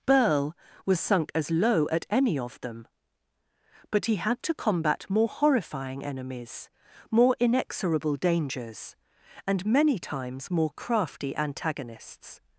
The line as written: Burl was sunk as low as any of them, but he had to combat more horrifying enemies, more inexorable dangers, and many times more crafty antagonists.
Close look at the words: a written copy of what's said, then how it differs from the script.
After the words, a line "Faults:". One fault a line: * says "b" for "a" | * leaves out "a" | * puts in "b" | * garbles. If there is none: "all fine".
Burl was sunk as low at any of them, but he had to combat more horrifying enemies, more inexorable dangers, and many times more crafty antagonists.
Faults:
* says "at" for "as"